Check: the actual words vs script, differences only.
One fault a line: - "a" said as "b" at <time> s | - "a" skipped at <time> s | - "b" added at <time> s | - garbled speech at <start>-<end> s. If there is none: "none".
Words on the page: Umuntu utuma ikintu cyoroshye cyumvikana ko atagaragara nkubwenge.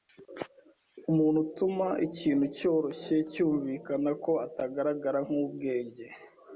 none